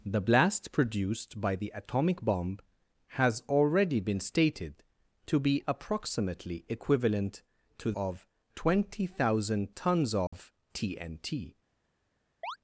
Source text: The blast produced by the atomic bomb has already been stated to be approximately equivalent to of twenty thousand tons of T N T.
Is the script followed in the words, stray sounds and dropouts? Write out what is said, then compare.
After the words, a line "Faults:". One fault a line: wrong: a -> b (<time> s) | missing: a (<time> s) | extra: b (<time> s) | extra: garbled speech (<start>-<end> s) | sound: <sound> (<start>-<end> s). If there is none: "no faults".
The blast produced by the atomic bomb has already been stated to be approximately equivalent to of twenty thousand tons of T N T.
Faults:
sound: dropout (10.3-10.3 s)
sound: chirp (12.4-12.6 s)